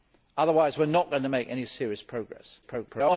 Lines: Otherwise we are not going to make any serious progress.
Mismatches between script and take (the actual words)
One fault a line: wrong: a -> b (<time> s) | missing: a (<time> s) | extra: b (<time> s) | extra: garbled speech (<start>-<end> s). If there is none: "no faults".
extra: garbled speech (2.6-3.2 s)